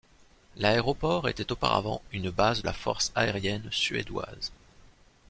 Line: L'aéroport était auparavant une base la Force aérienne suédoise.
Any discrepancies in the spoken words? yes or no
no